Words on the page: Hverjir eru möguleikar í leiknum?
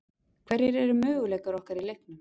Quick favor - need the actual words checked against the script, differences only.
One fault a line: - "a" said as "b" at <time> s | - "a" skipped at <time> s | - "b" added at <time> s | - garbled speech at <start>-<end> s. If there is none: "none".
- "okkar" added at 1.6 s